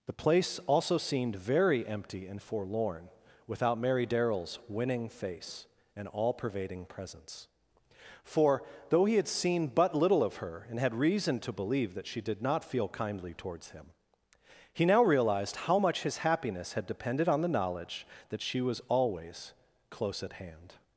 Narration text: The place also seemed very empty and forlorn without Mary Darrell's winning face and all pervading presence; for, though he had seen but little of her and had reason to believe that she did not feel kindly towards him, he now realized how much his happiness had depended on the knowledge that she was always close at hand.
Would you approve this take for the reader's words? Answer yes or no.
yes